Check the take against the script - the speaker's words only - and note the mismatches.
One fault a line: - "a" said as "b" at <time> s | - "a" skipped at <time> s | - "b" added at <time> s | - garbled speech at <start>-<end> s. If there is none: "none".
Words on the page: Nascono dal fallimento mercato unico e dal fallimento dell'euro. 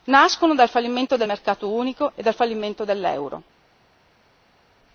- "del" added at 1.1 s